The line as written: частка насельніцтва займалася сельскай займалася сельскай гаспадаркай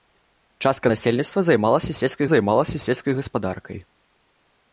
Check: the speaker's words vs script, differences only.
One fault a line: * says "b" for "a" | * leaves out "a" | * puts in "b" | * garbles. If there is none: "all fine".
all fine